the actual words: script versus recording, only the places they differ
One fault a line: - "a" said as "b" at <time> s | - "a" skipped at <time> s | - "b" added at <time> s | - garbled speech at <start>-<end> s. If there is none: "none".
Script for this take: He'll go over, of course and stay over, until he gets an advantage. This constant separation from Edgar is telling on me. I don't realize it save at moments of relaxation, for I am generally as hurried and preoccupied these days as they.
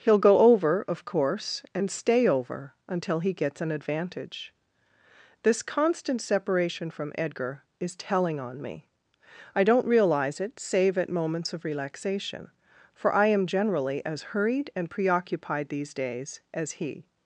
- "they" said as "he" at 16.7 s